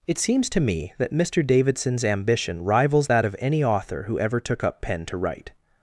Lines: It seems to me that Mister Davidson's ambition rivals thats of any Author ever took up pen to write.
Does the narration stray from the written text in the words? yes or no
yes